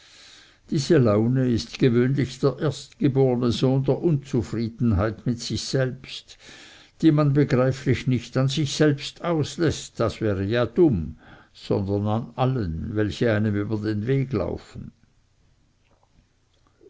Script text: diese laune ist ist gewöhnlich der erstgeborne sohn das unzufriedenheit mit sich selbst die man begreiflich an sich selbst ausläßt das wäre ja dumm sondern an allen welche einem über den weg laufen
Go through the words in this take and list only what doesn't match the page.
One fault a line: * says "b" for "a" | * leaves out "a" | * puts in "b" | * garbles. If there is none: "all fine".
* leaves out "ist"
* says "der" for "das"
* puts in "nicht"